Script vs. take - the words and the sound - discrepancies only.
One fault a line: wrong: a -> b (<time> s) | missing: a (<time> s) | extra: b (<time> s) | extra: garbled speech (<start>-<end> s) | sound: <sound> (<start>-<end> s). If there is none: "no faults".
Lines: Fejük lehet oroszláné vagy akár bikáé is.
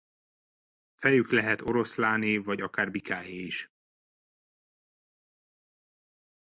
no faults